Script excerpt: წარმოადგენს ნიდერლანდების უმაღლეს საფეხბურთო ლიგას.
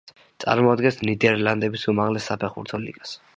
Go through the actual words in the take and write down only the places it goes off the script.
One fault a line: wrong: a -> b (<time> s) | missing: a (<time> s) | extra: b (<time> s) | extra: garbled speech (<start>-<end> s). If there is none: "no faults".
no faults